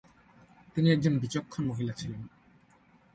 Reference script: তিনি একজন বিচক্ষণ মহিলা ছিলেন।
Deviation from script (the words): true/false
false